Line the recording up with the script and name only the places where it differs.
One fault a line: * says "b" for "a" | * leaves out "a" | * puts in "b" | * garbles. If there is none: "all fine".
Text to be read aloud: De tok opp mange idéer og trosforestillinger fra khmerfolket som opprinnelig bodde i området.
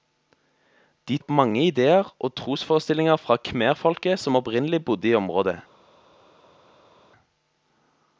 * leaves out "tok"